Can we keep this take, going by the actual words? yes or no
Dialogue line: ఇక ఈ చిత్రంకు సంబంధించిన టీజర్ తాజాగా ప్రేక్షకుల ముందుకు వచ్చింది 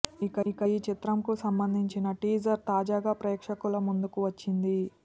no